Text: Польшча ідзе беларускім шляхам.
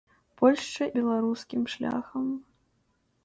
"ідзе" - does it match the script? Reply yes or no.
no